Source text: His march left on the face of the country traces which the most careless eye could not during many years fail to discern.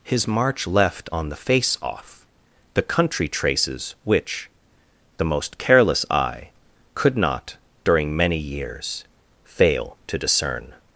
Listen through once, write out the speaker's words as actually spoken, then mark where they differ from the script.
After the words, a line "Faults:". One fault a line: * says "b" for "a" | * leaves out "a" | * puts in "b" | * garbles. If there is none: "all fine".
His march left on the face off the country traces which the most careless eye could not during many years fail to discern.
Faults:
* says "off" for "of"